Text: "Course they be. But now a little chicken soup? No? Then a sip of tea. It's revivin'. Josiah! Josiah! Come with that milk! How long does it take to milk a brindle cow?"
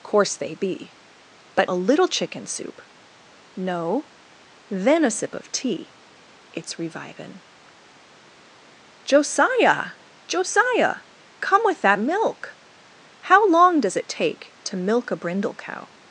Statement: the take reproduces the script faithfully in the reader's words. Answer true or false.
false